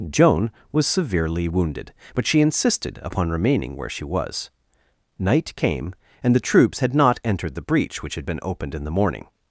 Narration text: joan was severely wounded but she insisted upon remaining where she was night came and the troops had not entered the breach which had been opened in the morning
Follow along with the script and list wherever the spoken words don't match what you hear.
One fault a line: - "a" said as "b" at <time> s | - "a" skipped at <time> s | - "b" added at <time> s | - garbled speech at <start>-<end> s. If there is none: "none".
none